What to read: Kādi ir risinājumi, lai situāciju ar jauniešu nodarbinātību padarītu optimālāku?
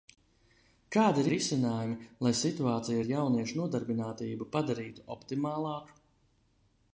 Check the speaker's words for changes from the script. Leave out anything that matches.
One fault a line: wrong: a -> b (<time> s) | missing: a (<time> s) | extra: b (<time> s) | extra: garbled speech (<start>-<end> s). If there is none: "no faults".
no faults